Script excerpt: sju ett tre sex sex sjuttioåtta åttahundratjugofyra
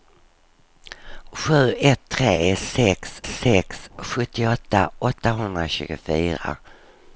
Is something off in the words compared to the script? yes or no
no